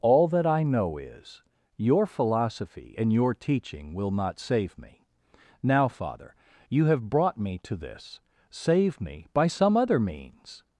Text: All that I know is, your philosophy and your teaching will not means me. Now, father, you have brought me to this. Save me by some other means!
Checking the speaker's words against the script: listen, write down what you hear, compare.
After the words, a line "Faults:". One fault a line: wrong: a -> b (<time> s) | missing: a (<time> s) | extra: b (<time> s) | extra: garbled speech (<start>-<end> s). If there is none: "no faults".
All that I know is, your philosophy and your teaching will not save me. Now, father, you have brought me to this. Save me by some other means!
Faults:
wrong: means -> save (4.4 s)